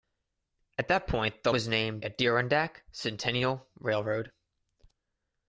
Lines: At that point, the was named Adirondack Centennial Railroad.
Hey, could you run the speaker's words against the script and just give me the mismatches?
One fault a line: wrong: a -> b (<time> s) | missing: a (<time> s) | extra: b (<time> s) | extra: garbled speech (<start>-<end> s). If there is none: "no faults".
no faults